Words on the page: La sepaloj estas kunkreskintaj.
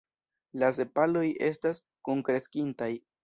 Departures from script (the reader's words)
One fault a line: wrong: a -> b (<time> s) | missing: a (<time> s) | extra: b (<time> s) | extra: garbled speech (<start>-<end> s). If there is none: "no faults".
no faults